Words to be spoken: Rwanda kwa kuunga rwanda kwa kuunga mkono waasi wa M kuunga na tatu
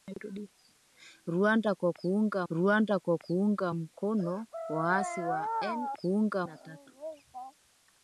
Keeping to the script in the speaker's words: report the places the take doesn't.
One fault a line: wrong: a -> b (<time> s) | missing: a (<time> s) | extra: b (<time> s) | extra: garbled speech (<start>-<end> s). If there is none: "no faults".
no faults